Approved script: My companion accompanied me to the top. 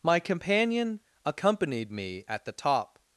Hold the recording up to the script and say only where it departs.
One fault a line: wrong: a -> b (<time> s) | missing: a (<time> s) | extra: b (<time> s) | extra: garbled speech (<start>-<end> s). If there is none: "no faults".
wrong: to -> at (2.3 s)